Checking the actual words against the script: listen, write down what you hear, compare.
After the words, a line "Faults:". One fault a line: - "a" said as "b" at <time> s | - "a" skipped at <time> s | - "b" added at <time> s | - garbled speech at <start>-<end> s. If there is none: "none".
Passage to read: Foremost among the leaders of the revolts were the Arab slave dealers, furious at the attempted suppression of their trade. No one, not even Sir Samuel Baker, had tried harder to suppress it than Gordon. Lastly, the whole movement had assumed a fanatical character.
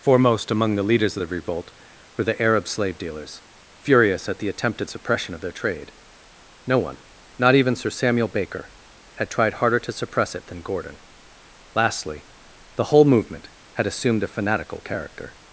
Foremost among the leaders of the revolt were the Arab slave dealers, furious at the attempted suppression of their trade. No one, not even Sir Samuel Baker, had tried harder to suppress it than Gordon. Lastly, the whole movement had assumed a fanatical character.
Faults:
- "revolts" said as "revolt" at 1.3 s